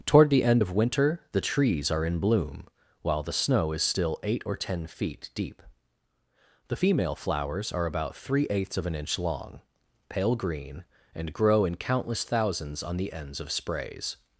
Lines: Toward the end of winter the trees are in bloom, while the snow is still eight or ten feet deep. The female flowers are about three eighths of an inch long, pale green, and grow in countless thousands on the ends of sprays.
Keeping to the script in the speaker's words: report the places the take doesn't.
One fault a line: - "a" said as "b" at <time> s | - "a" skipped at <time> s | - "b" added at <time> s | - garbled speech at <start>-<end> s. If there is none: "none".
none